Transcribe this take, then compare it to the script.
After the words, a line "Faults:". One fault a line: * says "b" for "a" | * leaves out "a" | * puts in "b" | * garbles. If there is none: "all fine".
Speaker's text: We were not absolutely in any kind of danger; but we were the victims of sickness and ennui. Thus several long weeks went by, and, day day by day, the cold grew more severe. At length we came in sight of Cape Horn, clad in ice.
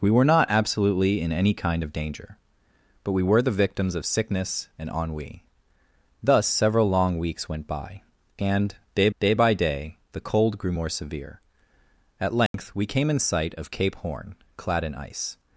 We were not absolutely in any kind of danger; but we were the victims of sickness and ennui. Thus several long weeks went by, and, day day by day, the cold grew more severe. At length we came in sight of Cape Horn, clad in ice.
Faults:
all fine